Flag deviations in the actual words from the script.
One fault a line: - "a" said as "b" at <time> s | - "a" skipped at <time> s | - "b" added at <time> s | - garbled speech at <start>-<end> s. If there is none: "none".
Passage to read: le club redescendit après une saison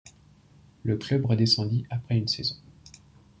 none